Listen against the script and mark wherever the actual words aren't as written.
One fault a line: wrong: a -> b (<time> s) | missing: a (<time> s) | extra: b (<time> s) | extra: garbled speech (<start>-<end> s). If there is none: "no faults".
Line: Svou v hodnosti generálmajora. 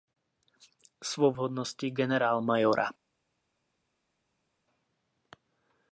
no faults